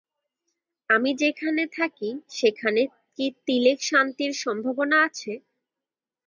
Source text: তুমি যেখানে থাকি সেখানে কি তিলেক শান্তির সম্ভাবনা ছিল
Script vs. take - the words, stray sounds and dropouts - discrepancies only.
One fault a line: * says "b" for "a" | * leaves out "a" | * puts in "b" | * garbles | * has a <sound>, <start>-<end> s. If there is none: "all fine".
* says "আমি" for "তুমি"
* says "আছে" for "ছিল"